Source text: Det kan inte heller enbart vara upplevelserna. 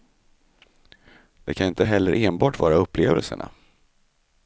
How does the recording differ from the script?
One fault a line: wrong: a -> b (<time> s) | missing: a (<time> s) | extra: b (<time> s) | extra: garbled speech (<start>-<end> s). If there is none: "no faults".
no faults